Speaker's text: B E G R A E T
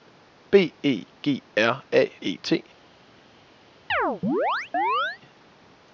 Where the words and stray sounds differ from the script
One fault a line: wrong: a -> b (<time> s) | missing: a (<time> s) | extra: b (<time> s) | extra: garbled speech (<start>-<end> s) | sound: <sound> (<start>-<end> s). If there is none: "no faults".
sound: chirp (3.9-5.2 s)